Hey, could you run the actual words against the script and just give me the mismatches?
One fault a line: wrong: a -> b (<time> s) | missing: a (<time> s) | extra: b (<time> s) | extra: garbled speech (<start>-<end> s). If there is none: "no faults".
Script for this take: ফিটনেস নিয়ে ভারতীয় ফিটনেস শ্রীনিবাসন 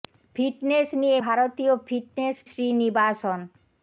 no faults